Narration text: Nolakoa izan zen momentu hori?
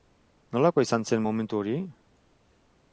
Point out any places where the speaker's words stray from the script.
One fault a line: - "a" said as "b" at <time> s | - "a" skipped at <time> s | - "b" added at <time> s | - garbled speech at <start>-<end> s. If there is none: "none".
none